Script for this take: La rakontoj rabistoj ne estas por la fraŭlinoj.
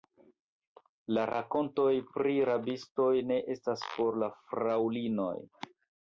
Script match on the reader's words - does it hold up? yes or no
no